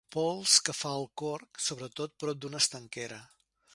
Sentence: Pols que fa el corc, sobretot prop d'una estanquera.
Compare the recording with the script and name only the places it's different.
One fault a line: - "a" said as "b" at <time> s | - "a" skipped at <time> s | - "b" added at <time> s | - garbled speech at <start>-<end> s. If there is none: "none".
none